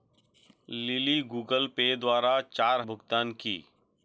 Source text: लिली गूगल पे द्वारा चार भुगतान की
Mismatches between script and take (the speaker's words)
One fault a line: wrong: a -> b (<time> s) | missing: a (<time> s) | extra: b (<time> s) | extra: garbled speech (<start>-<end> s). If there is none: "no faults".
no faults